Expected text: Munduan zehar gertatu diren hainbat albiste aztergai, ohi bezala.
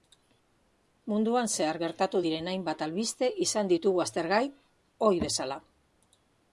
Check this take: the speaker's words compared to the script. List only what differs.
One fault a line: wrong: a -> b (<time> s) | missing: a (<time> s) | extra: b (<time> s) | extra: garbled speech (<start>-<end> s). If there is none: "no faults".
extra: izan ditugu (3.5 s)